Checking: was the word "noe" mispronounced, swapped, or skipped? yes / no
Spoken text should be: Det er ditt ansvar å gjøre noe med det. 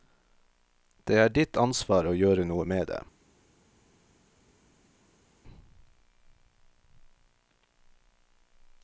no